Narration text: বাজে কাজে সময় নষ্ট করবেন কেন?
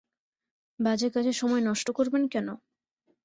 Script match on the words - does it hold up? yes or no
yes